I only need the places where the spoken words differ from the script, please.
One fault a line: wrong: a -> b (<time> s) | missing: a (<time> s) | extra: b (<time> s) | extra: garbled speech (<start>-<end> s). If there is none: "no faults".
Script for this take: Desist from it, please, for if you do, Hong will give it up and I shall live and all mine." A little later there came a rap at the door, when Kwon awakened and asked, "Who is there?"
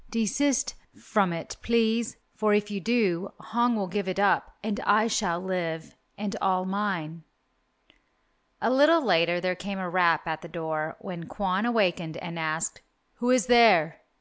no faults